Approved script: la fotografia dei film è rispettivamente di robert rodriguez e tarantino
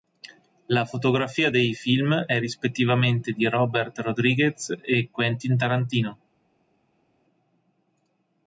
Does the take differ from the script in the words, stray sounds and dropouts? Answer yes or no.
yes